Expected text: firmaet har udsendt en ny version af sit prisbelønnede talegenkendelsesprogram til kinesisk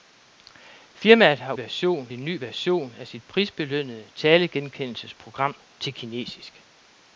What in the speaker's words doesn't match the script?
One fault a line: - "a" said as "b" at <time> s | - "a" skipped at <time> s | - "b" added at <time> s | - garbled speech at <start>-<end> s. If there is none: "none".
- "udsendt" said as "version" at 1.6 s